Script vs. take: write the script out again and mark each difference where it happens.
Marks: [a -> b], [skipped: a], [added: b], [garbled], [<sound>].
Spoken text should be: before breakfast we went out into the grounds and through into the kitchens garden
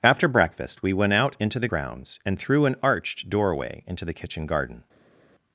[before -> after] breakfast we went out into the grounds and through [added: an arched doorway] into the [kitchens -> kitchen] garden